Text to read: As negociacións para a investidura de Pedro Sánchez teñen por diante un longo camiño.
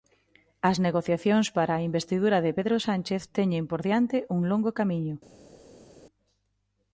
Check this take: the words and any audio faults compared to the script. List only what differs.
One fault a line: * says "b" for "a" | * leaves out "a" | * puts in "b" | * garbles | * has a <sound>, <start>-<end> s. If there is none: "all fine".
all fine